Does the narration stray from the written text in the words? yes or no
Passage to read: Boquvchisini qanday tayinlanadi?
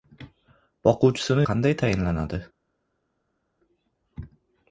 no